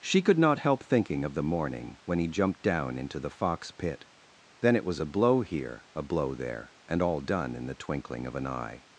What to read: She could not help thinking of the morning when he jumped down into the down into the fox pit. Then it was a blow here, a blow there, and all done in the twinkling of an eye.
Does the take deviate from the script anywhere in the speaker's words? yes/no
yes